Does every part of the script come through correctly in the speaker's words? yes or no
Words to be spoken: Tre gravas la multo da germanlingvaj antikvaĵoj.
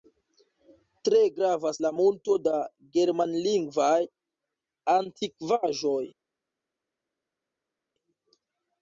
yes